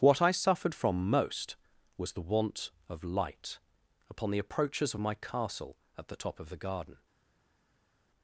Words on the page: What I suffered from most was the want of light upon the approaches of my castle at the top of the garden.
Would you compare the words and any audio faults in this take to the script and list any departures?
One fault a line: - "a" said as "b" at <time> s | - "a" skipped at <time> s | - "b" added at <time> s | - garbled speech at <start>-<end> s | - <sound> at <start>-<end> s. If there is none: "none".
none